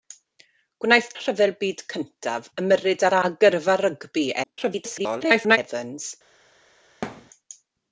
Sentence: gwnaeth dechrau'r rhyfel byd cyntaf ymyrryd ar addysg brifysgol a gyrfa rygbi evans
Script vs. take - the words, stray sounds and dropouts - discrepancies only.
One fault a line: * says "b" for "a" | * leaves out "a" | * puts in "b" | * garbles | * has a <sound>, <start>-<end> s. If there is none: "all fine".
* leaves out "dechrau'r"
* leaves out "addysg brifysgol"
* garbles
* has a thud, 7.0-7.3 s